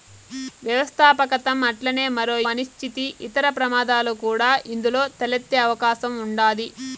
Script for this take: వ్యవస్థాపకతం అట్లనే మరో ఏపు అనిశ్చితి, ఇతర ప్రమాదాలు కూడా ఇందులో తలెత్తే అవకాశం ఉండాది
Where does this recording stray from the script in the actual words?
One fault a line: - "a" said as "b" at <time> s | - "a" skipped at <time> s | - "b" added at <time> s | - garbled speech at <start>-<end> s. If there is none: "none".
- "ఏపు" skipped at 2.4 s